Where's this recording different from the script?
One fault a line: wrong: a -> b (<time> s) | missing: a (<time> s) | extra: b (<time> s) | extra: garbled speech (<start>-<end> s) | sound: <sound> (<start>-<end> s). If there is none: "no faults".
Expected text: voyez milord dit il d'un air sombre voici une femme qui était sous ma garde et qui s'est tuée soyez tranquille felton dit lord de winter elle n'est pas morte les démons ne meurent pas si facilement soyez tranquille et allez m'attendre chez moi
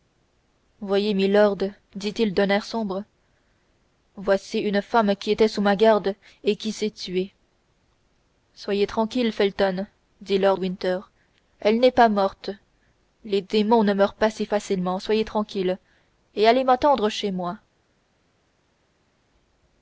missing: de (10.6 s)